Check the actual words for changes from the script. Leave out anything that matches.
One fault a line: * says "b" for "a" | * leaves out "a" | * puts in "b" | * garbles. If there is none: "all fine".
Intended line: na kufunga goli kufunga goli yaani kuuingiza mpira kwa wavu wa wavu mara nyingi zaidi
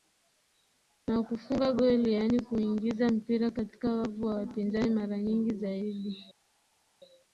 * leaves out "kufunga goli"
* says "katika" for "kwa"
* says "wapinzani" for "wavu"